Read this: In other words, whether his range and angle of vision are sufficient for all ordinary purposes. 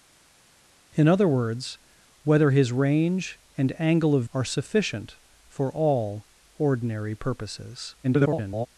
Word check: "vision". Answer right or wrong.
wrong